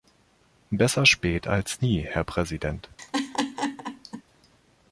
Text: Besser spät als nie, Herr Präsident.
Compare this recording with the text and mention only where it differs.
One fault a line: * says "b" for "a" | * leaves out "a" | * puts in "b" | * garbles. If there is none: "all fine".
all fine